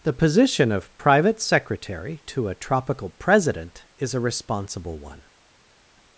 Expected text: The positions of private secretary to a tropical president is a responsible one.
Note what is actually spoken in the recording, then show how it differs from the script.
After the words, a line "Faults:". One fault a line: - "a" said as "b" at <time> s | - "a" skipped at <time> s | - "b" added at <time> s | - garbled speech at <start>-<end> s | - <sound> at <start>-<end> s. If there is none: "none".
The position of private secretary to a tropical president is a responsible one.
Faults:
- "positions" said as "position" at 0.1 s